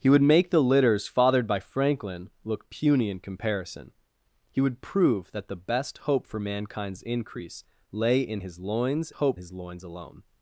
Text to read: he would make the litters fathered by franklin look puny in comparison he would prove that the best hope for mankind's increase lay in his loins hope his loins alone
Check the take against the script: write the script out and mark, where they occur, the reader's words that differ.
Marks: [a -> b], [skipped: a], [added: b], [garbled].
he would make the litters fathered by franklin look puny in comparison he would prove that the best hope for mankind's increase lay in his loins hope his loins alone